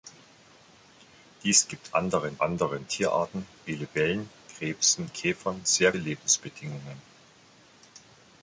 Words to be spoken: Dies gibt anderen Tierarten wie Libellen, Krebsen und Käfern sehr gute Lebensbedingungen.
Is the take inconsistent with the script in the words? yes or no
yes